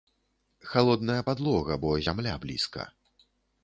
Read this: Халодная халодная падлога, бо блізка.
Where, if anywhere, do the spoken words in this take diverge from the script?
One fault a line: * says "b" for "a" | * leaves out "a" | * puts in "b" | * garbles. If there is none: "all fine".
* leaves out "халодная"
* puts in "зямля"